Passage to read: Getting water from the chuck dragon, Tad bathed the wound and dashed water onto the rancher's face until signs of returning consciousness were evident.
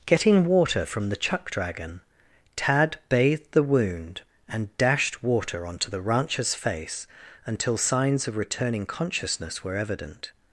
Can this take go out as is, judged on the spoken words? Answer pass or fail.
pass